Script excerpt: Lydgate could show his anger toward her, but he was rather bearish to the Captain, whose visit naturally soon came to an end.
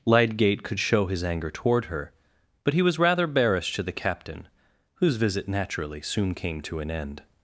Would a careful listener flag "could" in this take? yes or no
no